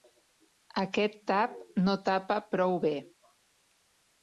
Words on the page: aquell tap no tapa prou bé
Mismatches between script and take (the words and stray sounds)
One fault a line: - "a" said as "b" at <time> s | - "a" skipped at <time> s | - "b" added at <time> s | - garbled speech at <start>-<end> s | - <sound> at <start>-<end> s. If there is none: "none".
- "aquell" said as "aquest" at 0.8 s